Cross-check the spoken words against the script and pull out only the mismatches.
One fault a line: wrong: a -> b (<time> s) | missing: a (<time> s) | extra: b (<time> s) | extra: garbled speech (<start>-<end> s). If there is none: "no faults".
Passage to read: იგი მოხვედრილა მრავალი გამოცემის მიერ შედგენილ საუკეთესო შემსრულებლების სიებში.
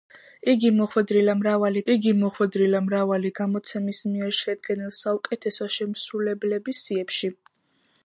extra: იგი მოხვედრილა მრავალი (1.9 s)